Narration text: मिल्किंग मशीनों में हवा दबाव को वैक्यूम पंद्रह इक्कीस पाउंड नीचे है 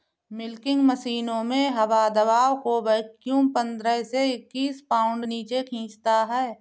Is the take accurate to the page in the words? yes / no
no